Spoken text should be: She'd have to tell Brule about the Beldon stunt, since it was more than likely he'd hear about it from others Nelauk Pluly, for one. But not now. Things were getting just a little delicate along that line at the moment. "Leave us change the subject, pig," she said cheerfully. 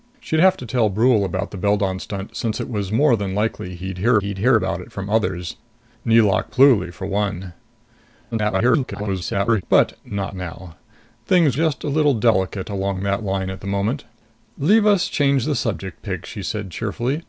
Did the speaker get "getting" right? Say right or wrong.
wrong